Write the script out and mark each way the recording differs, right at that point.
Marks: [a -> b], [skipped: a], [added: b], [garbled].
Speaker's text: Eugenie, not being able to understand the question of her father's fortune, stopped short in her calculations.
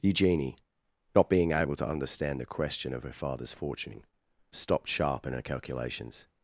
Eugenie, not being able to understand the question of her father's fortune, stopped [short -> sharp] in her calculations.